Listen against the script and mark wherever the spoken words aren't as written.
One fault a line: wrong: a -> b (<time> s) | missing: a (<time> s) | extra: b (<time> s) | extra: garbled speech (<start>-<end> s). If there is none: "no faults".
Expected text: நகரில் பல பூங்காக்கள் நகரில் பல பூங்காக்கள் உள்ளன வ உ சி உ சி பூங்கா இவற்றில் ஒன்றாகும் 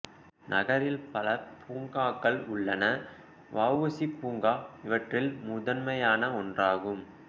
missing: நகரில் பல பூங்காக்கள் (2.4 s)
missing: உ சி (4.1 s)
extra: முதன்மையான (5.4 s)